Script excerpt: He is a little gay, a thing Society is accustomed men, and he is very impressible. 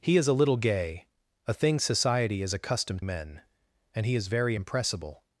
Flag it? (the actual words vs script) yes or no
no